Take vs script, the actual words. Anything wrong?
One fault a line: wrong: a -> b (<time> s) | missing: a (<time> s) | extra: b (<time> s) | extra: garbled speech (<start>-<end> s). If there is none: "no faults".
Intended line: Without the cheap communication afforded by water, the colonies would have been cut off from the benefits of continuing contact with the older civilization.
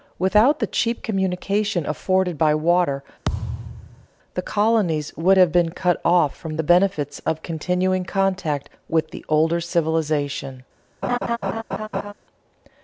no faults